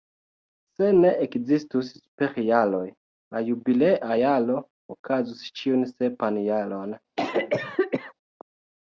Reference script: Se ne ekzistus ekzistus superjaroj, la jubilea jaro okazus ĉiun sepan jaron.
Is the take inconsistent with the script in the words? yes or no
yes